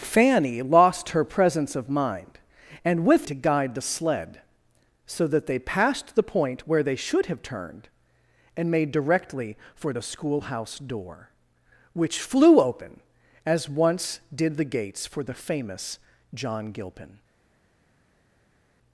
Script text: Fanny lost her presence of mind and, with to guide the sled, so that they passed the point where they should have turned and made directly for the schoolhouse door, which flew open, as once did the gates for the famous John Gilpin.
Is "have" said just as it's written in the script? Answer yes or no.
yes